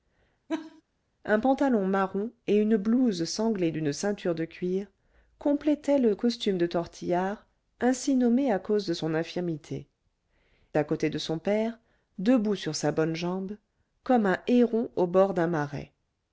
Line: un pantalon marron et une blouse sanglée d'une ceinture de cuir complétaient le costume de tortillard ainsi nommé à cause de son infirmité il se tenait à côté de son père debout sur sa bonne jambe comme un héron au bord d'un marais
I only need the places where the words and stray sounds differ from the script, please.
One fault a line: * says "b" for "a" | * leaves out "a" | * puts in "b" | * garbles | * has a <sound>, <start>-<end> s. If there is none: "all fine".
* has a laugh, 0.5-0.8 s
* leaves out "il se tenait"